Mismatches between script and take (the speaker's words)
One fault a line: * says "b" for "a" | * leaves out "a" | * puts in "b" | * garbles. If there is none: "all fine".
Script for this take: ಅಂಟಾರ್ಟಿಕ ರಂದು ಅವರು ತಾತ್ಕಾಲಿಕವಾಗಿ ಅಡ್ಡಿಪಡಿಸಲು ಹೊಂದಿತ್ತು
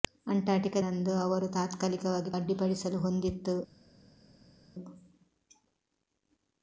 all fine